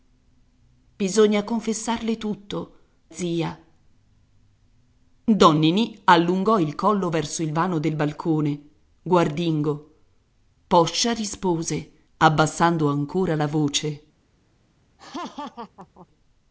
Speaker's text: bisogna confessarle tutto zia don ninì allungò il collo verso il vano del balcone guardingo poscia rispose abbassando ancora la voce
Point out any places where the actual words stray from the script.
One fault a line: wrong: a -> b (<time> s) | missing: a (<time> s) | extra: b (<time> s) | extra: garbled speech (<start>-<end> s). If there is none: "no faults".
no faults